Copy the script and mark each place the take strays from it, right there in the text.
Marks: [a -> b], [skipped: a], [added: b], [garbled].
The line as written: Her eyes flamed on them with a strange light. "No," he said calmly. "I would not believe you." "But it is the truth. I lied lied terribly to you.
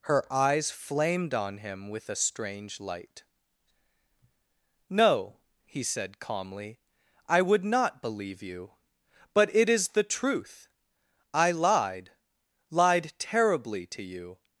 Her eyes flamed on [them -> him] with a strange light. "No," he said calmly. "I would not believe you." "But it is the truth. I lied lied terribly to you.